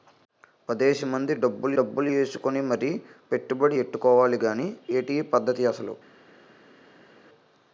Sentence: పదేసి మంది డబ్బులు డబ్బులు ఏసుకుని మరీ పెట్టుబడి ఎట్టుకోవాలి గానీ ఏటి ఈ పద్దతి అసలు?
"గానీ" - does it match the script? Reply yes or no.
yes